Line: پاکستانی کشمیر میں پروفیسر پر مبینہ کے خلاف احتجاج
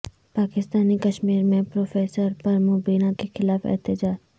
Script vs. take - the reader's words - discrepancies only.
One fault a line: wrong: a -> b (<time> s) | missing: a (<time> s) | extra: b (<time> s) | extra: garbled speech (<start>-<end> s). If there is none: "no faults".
no faults